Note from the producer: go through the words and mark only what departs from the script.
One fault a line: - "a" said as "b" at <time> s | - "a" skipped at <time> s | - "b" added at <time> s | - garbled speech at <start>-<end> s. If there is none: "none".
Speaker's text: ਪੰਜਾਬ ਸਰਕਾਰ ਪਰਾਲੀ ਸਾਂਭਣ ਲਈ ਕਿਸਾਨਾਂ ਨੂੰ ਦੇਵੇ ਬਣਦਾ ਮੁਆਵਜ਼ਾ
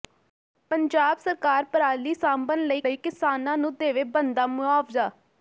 - "ਲਈ" added at 2.8 s